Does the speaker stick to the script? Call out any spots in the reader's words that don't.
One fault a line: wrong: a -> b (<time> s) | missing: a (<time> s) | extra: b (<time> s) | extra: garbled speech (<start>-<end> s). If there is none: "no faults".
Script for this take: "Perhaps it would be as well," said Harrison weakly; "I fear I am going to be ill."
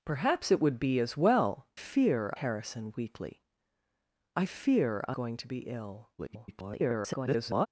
wrong: said -> fear (1.7 s)
missing: am (5.2 s)
extra: garbled speech (6.2-7.7 s)